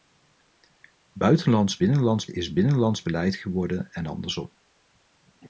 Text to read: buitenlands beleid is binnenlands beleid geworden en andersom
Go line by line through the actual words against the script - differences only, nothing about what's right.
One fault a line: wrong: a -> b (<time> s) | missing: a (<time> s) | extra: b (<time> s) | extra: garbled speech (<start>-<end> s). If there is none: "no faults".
wrong: beleid -> binnenlands (1.8 s)